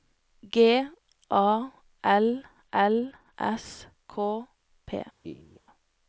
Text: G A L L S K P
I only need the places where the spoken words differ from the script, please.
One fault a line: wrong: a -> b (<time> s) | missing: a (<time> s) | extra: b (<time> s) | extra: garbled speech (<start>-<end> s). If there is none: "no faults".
no faults